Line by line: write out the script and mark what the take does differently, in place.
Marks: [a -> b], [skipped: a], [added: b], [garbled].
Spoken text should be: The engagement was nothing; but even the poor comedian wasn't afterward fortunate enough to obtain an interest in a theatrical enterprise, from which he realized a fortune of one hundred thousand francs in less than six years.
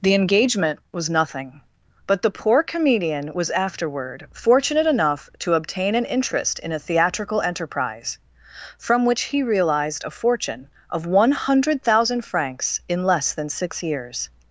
The engagement was nothing; but [skipped: even] the poor comedian [wasn't -> was] afterward fortunate enough to obtain an interest in a theatrical enterprise, from which he realized a fortune of one hundred thousand francs in less than six years.